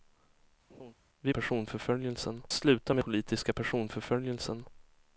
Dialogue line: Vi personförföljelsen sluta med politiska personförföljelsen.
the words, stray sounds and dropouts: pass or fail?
fail